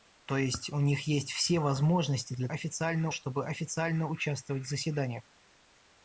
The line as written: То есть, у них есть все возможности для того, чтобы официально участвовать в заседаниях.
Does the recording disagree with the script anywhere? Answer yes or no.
yes